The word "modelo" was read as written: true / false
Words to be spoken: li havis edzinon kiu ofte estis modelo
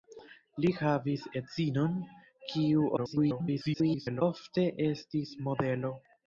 true